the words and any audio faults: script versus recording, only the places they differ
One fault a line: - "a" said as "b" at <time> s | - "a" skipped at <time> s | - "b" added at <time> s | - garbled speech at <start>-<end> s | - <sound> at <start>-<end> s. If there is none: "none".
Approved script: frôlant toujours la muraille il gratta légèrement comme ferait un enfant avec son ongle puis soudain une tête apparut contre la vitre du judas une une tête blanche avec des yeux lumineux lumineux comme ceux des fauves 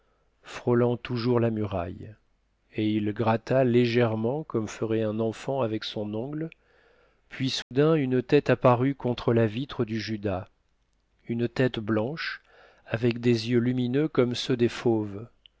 - "et" added at 2.8 s
- dropout at 7.6-7.7 s
- "une" skipped at 11.5 s
- "lumineux" skipped at 14.1 s